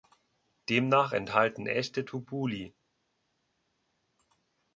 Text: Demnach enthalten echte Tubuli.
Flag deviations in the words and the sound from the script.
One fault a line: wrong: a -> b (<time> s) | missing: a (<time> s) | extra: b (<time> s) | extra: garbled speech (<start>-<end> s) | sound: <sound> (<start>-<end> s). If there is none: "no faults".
no faults